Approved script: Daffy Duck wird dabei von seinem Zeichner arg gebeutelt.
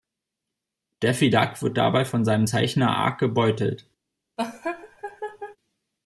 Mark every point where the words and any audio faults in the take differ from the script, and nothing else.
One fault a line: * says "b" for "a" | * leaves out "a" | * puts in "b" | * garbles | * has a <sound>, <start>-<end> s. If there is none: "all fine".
* has a laugh, 4.4-5.6 s